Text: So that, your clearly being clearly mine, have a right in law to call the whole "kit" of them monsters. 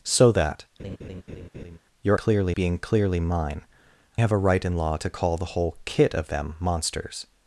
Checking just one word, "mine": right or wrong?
right